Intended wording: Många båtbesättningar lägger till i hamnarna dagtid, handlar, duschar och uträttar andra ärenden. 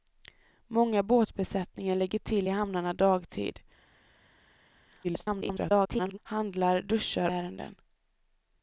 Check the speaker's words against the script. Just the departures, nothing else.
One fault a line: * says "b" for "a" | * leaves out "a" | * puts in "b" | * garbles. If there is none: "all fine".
* garbles
* leaves out "och uträttar andra"